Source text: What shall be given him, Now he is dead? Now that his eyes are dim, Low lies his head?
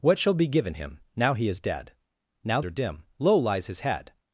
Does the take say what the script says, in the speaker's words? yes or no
no